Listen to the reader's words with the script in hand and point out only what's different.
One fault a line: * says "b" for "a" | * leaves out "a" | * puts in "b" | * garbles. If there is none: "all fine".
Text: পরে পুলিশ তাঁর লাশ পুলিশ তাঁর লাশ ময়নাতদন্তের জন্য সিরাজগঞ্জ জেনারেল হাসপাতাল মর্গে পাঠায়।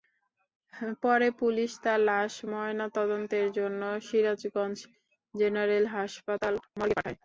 * leaves out "পুলিশ তাঁর লাশ"